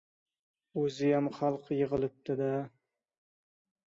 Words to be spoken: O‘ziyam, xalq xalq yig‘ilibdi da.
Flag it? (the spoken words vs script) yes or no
yes